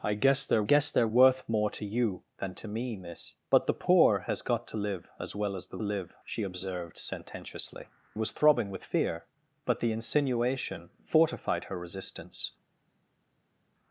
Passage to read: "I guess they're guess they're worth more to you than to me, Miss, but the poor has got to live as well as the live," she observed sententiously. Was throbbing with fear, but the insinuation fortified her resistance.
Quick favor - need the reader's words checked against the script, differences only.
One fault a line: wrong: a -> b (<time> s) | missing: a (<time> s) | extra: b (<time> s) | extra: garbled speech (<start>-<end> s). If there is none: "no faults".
no faults